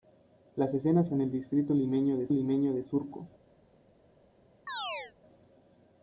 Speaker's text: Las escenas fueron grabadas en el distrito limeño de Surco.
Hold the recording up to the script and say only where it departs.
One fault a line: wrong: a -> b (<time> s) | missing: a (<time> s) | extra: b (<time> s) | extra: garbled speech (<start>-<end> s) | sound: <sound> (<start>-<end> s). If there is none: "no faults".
missing: fueron grabadas (1.1 s)
extra: limeño de (2.3 s)
sound: chirp (4.7-5.1 s)